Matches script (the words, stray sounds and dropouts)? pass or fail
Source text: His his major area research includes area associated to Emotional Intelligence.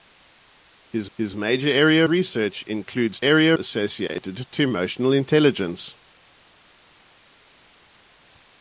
pass